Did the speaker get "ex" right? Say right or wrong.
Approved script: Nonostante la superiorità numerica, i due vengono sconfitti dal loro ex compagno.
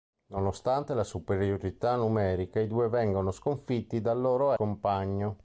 wrong